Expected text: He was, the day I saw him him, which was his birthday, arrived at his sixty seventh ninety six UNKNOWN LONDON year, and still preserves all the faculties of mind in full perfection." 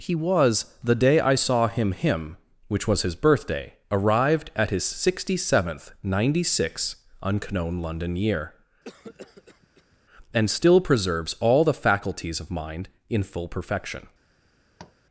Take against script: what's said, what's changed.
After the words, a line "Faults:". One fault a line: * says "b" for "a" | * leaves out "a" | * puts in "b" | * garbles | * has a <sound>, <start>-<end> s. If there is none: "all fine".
He was, the day I saw him him, which was his birthday, arrived at his sixty seventh ninety six UNKNOWN LONDON year, and still preserves all the faculties of mind in full perfection."
Faults:
* has a cough, 8.8-10.0 s
* has a tap, 14.8-15.0 s